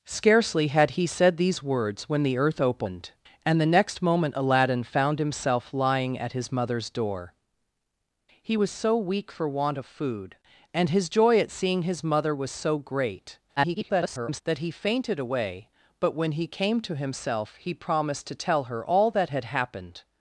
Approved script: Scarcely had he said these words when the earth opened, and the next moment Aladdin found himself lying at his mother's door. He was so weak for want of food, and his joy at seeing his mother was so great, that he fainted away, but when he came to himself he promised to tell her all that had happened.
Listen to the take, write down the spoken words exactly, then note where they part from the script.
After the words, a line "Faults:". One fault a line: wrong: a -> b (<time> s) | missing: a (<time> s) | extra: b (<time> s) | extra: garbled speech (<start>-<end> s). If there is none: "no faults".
Scarcely had he said these words when the earth opened, and the next moment Aladdin found himself lying at his mother's door. He was so weak for want of food, and his joy at seeing his mother was so great, [garbled] that he fainted away, but when he came to himself he promised to tell her all that had happened.
Faults:
extra: garbled speech (13.6-14.4 s)